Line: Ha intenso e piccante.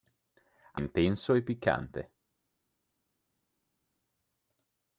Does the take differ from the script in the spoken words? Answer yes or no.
no